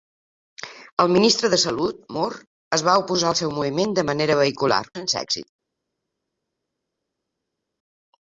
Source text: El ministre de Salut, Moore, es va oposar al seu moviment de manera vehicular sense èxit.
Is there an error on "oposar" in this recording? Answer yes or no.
no